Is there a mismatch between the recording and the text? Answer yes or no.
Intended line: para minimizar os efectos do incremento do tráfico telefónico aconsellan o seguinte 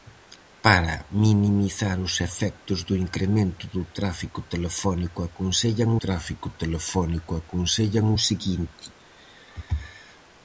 yes